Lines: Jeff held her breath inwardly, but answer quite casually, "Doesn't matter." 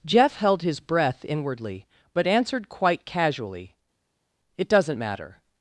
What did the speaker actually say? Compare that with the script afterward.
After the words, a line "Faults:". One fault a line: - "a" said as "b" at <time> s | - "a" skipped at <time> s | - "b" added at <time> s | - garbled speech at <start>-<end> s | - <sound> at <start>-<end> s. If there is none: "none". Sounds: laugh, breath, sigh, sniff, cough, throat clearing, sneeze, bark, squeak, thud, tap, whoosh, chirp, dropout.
Jeff held his breath inwardly, but answered quite casually, "It doesn't matter."
Faults:
- "her" said as "his" at 0.6 s
- "answer" said as "answered" at 2.2 s
- "It" added at 4.6 s